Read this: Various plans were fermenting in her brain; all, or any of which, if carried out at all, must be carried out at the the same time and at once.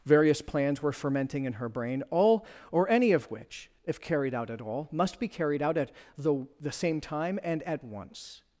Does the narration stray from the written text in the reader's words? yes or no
no